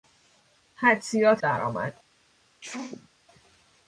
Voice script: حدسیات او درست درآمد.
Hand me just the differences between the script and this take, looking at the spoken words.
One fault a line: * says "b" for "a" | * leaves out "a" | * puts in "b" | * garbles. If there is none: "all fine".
* leaves out "او درست"